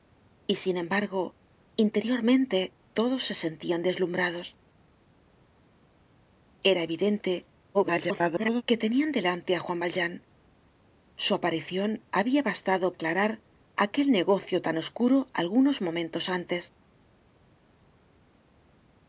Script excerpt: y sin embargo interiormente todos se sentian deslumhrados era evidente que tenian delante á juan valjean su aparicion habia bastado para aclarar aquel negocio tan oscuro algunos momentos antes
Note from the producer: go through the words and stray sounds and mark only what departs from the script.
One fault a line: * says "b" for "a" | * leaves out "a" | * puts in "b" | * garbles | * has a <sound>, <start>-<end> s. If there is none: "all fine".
* garbles
* leaves out "para"